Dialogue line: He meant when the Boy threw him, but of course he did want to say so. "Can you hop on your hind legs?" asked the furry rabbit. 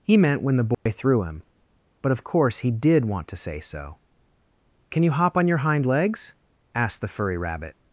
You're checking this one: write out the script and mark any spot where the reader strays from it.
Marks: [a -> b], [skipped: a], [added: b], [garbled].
He meant when the Boy threw him, but of course he did want to say so. "Can you hop on your hind legs?" asked the furry rabbit.